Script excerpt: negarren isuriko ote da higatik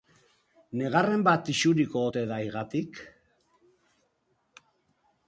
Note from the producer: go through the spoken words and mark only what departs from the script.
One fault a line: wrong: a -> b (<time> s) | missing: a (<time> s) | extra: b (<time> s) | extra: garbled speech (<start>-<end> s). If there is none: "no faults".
extra: bat (1.3 s)